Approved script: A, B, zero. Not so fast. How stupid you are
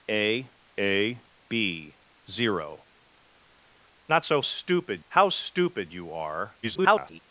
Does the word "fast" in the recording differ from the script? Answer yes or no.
yes